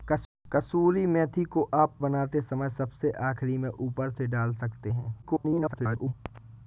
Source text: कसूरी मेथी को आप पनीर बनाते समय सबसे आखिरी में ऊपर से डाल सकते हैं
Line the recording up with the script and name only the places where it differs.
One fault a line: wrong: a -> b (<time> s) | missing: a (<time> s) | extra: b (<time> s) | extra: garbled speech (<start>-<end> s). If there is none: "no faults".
missing: पनीर (2.0 s)
extra: garbled speech (5.2-6.1 s)